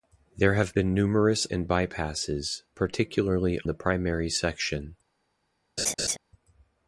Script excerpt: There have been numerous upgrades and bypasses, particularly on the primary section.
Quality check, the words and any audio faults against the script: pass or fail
fail